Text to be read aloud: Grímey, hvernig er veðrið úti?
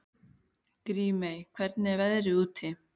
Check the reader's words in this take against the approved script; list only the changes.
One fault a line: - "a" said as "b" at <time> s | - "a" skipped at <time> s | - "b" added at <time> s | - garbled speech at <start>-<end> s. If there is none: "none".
none